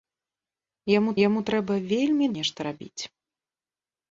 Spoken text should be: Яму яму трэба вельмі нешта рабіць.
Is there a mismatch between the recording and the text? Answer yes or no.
no